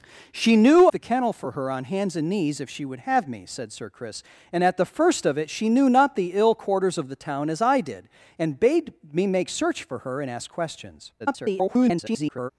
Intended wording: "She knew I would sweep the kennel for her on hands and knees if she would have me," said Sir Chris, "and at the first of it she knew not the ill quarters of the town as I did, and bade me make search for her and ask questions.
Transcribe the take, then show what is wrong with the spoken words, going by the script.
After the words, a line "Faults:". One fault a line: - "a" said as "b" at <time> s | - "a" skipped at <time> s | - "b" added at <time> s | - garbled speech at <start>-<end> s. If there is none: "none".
"She knew the kennel for her on hands and knees if she would have me," said Sir Chris, "and at the first of it she knew not the ill quarters of the town as I did, and bade me make search for her and ask questions. [garbled]
Faults:
- "I would sweep" skipped at 0.9 s
- garbled speech at 11.2-12.5 s